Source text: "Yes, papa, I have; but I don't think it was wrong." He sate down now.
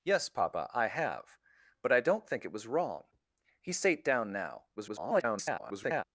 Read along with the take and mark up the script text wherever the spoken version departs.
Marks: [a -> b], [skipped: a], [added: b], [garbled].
"Yes, papa, I have; but I don't think it was wrong." He sate down now. [garbled]